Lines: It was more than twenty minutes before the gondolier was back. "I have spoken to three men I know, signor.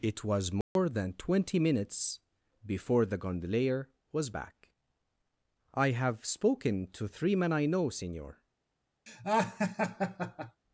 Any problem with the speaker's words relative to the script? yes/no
no